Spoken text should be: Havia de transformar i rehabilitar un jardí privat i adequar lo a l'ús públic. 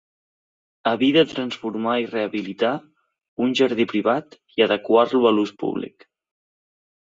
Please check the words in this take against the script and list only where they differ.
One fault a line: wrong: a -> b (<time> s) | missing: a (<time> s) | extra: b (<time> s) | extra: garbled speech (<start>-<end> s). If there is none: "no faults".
no faults